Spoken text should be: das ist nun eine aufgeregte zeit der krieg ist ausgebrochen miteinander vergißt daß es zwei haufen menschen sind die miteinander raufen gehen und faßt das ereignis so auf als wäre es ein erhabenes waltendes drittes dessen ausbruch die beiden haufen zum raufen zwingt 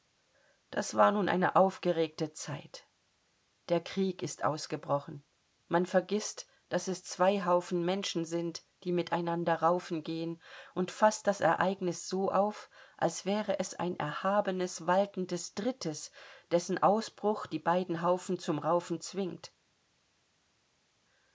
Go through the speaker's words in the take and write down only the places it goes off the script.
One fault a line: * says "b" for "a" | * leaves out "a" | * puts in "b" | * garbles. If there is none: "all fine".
* says "war" for "ist"
* says "man" for "miteinander"